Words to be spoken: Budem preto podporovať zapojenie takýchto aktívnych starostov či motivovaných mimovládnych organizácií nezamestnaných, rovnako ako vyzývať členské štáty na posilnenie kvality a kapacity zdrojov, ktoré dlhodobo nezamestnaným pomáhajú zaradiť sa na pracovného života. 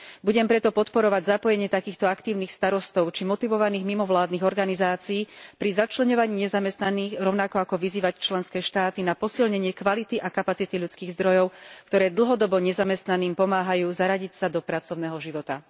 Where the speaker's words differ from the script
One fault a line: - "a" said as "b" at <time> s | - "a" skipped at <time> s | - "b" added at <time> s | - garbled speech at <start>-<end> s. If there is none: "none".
- "pri začleňovaní" added at 5.6 s
- "ľudských" added at 10.8 s
- "na" said as "do" at 14.5 s